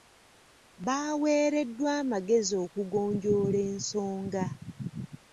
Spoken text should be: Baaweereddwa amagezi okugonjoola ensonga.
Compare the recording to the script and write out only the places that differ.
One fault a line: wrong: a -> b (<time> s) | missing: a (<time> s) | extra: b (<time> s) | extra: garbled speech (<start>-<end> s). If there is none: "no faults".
no faults